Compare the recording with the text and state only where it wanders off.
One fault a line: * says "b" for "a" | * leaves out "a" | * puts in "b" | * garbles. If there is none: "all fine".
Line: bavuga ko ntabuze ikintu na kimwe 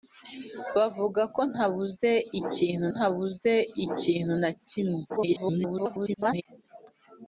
* puts in "ntabuze ikintu"
* garbles